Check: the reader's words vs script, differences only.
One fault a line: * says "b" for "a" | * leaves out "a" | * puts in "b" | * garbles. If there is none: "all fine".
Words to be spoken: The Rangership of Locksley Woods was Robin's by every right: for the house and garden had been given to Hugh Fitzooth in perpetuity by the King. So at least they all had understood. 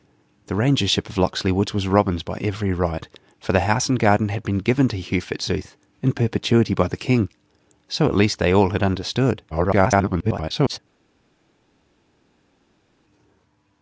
* garbles